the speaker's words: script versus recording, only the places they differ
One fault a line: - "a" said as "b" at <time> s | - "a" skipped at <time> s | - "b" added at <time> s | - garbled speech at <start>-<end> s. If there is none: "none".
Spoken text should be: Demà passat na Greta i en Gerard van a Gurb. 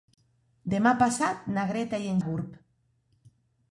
- "Gerard van" skipped at 2.2 s